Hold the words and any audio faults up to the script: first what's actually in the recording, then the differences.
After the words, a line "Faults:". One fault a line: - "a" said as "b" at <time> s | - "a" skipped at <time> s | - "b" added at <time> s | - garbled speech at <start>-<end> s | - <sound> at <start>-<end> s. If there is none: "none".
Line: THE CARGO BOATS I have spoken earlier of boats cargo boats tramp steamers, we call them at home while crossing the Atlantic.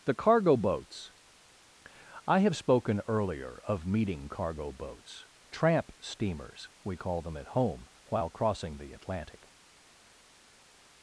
THE CARGO BOATS I have spoken earlier of meeting cargo boats tramp steamers, we call them at home while crossing the Atlantic.
Faults:
- "boats" said as "meeting" at 3.9 s